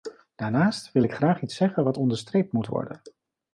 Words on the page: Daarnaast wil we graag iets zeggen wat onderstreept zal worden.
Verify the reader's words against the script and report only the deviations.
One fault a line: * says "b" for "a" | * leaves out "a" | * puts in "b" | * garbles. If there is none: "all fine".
* says "ik" for "we"
* says "moet" for "zal"